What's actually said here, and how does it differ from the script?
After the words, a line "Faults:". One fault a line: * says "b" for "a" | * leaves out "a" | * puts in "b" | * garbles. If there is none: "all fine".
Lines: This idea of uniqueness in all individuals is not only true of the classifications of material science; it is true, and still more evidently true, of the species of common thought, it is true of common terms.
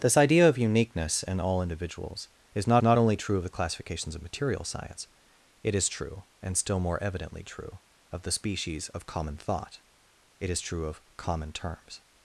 This idea of uniqueness in all individuals is not not only true of the classifications of material science; it is true, and still more evidently true, of the species of common thought, it is true of common terms.
Faults:
* puts in "not"